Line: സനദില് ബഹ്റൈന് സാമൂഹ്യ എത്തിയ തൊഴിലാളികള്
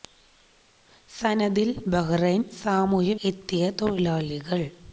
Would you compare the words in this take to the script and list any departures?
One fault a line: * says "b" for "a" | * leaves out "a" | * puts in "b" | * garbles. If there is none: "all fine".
all fine